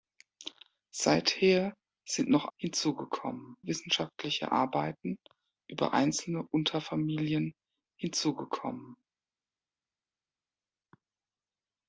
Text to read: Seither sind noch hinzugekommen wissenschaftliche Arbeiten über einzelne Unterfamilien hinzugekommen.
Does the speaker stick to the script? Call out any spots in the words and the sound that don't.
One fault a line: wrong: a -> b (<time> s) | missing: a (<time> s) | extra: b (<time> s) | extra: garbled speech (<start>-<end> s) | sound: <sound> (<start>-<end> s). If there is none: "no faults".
no faults